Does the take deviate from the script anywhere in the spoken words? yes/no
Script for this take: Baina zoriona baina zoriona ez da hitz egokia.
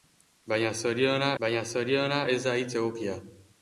no